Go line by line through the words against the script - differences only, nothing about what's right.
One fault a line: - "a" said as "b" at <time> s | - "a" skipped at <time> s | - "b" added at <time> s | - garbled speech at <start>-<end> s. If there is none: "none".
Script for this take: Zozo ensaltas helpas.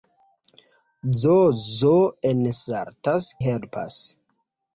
none